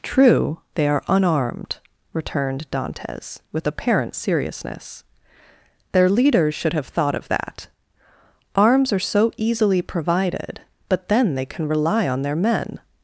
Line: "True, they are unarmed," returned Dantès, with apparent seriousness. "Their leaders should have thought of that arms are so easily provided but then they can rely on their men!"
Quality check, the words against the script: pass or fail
pass